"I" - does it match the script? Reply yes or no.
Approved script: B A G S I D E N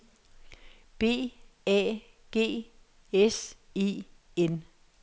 no